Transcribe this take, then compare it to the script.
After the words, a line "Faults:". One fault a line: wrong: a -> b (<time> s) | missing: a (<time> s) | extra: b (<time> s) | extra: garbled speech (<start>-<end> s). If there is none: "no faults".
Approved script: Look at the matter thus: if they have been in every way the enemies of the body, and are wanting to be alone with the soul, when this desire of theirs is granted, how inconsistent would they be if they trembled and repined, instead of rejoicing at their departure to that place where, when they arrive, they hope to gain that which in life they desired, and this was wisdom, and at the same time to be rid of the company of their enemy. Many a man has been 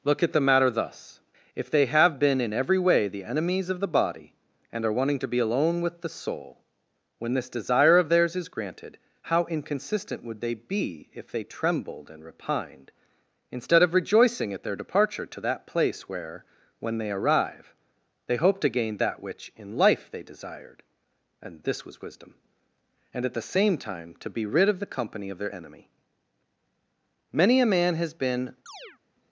Look at the matter thus: if they have been in every way the enemies of the body, and are wanting to be alone with the soul, when this desire of theirs is granted, how inconsistent would they be if they trembled and repined, instead of rejoicing at their departure to that place where, when they arrive, they hope to gain that which in life they desired, and this was wisdom, and at the same time to be rid of the company of their enemy. Many a man has been
Faults:
no faults